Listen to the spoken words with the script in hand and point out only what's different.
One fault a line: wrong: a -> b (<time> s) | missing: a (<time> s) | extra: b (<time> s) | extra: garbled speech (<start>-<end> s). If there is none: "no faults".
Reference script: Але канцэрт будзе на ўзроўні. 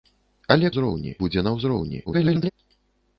wrong: канцэрт -> ўзроўні (0.7 s)
extra: garbled speech (2.1-2.5 s)